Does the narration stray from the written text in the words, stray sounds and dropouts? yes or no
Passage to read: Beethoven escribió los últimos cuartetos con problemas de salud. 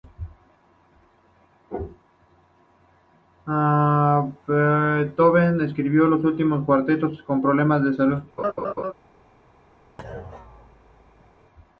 yes